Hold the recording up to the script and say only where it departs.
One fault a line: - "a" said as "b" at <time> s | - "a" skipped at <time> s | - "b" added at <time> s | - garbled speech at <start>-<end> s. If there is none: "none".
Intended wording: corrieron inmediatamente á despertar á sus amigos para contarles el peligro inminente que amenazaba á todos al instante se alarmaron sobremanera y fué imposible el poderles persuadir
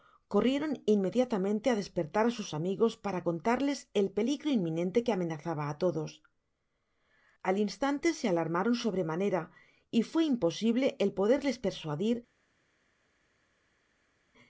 none